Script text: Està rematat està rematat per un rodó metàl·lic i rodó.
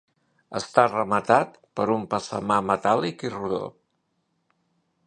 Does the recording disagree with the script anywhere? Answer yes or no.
yes